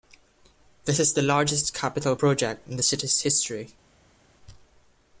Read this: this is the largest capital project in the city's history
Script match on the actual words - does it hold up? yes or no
yes